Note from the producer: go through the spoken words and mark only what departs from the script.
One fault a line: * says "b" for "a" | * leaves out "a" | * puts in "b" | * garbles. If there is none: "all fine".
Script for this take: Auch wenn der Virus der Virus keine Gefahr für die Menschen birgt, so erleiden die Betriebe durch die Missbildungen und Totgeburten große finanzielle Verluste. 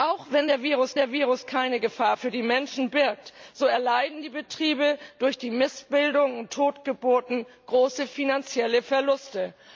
all fine